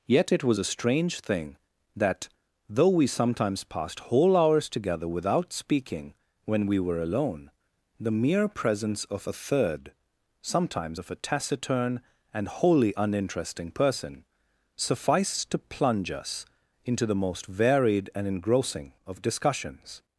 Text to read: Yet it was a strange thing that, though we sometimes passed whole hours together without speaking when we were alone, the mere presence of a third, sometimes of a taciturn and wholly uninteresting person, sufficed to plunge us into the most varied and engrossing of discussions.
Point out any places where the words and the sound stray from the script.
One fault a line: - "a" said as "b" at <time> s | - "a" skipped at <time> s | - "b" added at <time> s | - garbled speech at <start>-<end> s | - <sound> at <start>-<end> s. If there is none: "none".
none